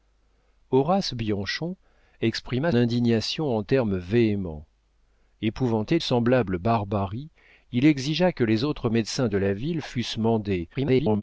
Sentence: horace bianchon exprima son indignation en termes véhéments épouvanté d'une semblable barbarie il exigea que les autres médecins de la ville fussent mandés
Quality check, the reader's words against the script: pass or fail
fail